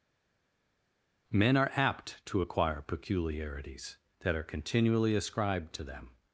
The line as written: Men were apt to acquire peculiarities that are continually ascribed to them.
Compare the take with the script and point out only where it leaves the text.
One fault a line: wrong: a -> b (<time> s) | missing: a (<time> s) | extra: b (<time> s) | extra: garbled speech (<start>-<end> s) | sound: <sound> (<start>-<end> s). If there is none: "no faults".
wrong: were -> are (1.6 s)